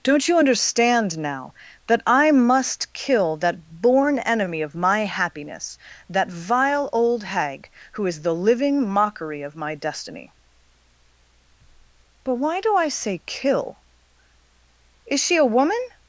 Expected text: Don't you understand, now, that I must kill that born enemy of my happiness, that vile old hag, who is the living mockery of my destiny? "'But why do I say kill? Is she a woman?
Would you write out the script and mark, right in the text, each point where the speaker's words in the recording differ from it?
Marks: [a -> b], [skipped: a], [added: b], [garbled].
Don't you understand, now, that I must kill that born enemy of my happiness, that vile old hag, who is the living mockery of my destiny? "'But why do I say kill? Is she a woman?